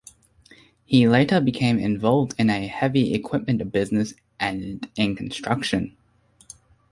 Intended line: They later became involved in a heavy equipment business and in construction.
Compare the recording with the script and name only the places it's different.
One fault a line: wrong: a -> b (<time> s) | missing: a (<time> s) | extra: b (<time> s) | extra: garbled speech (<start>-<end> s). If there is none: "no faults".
wrong: They -> He (0.8 s)